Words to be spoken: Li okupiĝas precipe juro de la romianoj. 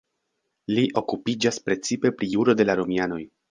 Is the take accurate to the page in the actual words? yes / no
no